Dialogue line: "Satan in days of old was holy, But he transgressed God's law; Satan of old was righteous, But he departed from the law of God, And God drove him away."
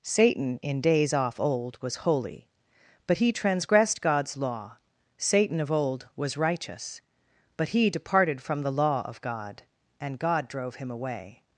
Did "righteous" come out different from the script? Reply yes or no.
no